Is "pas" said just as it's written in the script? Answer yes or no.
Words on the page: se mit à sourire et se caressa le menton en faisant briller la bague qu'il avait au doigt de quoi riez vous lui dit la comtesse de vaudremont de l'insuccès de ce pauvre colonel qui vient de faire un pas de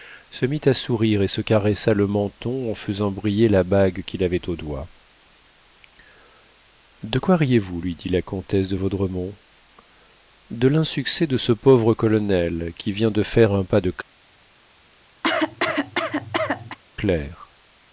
yes